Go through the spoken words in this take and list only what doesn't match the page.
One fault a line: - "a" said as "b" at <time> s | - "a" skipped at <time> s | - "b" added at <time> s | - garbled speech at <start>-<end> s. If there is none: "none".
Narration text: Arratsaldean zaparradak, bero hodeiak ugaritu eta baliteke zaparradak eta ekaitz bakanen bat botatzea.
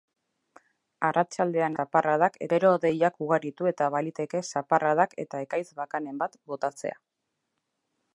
none